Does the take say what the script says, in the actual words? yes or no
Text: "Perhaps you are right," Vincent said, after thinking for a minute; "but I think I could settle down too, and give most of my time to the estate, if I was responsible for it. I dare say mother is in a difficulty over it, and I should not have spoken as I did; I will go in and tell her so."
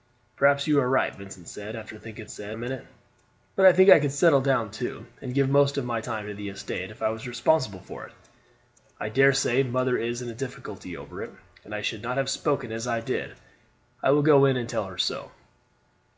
no